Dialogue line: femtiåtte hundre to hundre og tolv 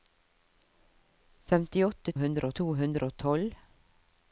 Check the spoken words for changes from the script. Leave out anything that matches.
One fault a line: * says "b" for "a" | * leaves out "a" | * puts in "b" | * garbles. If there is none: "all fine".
all fine